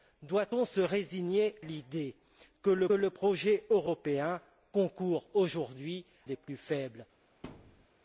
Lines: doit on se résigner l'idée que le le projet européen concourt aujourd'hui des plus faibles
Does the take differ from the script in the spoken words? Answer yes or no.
no